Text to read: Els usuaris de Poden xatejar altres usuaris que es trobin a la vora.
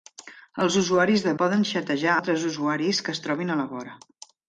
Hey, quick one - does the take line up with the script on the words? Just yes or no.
yes